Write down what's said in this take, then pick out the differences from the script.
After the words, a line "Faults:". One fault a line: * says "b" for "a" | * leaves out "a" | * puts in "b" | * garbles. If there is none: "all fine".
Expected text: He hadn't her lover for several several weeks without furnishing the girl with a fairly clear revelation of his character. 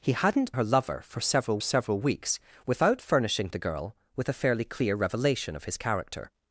He hadn't her lover for several several weeks without furnishing the girl with a fairly clear revelation of his character.
Faults:
all fine